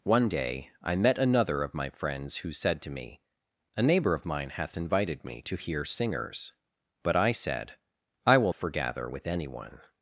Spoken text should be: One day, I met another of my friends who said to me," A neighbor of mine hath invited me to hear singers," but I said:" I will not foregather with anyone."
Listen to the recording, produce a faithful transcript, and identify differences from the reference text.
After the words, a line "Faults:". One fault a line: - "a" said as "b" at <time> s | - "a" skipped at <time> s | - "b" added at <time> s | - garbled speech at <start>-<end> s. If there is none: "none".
One day, I met another of my friends who said to me," A neighbor of mine hath invited me to hear singers," but I said:" I will foregather with anyone."
Faults:
- "not" skipped at 8.5 s